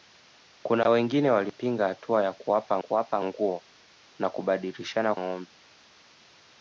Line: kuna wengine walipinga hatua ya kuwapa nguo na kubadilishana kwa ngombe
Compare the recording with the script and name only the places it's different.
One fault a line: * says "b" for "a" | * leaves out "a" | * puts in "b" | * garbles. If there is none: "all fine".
* puts in "kuwapa"
* leaves out "kwa"